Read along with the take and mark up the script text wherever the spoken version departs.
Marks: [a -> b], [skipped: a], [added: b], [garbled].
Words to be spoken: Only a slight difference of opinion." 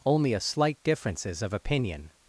Only a slight [difference -> differences] of opinion."